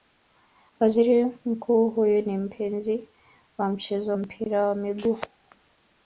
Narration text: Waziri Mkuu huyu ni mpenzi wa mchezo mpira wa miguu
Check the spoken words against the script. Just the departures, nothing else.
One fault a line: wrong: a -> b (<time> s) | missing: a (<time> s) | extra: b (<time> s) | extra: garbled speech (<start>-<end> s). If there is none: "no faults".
no faults